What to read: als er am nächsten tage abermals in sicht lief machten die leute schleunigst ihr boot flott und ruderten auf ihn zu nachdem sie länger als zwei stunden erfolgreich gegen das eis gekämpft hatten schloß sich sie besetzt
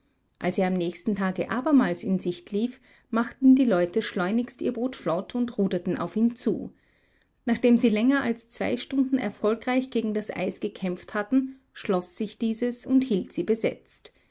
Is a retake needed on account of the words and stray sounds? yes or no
yes